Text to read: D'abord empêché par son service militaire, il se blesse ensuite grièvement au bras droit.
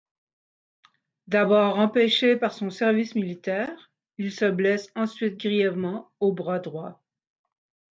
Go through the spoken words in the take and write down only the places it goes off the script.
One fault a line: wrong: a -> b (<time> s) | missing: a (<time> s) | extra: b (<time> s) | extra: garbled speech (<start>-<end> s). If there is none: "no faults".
no faults